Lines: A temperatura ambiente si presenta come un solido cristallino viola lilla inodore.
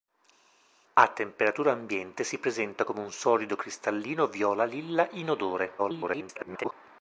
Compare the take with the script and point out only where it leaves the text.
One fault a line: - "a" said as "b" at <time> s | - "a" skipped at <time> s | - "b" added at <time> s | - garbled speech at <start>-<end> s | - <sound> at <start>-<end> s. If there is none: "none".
- garbled speech at 5.8-6.7 s